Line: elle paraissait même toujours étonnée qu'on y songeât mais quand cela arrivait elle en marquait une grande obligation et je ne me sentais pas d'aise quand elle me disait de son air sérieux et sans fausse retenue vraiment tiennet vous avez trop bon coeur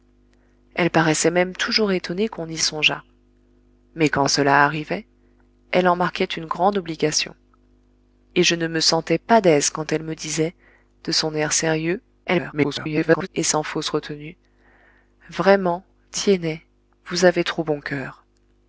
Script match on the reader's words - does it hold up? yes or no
no